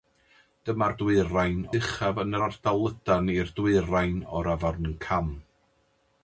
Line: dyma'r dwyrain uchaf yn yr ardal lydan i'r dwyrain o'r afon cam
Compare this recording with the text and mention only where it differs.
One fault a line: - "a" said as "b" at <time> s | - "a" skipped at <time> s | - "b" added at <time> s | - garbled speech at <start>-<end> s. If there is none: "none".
none